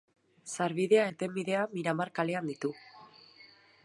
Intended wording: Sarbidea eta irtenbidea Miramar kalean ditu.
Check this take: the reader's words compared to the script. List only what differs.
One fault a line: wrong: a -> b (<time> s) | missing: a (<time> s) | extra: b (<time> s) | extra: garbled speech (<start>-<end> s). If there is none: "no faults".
missing: eta (1.0 s)